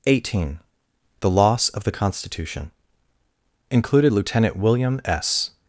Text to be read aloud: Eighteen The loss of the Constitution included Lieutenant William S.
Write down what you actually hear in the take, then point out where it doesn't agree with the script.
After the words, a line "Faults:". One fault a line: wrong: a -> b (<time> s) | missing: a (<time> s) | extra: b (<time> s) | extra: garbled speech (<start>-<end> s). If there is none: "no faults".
Eighteen The loss of the Constitution included Lieutenant William S.
Faults:
no faults